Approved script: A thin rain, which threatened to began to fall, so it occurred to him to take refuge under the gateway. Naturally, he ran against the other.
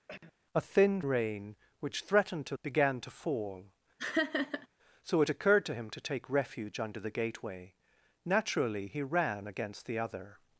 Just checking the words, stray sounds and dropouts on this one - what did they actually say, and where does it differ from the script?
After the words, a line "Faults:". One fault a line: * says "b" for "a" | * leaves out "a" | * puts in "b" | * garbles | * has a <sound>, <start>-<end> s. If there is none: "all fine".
A thin rain, which threatened to began to fall, so it occurred to him to take refuge under the gateway. Naturally, he ran against the other.
Faults:
* has a cough, 0.1-0.3 s
* has a laugh, 4.0-4.7 s